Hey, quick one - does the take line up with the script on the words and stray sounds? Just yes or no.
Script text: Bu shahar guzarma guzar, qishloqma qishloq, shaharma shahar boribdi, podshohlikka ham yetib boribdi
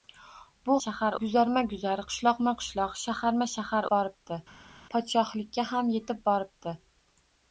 yes